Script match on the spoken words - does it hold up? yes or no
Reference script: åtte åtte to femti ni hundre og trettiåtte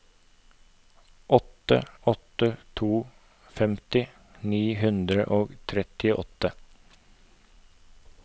yes